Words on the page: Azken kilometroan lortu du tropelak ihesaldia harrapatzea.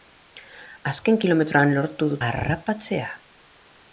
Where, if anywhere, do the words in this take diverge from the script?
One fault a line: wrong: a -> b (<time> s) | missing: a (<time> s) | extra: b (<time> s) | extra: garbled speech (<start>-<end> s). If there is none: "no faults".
missing: tropelak ihesaldia (2.2 s)